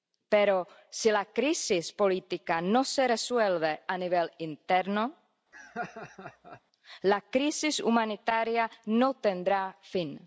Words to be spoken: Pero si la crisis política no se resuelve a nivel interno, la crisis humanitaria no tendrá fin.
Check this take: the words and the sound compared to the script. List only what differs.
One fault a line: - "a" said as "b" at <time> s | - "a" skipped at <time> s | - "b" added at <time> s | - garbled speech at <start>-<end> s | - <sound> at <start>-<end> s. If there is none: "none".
- laugh at 5.5-6.6 s